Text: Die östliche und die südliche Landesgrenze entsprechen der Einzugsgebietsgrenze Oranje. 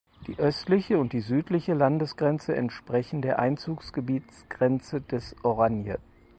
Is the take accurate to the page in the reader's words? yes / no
no